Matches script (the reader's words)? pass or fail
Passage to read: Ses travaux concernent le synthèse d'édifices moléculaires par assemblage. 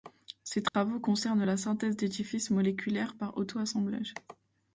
fail